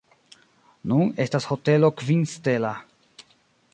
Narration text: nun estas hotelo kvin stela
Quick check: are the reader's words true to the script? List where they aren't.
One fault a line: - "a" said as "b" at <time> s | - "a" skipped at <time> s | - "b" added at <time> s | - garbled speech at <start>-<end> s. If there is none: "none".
none